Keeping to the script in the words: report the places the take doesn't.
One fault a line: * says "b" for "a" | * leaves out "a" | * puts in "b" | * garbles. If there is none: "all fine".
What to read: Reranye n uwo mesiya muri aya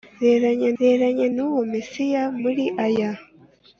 * puts in "reranye"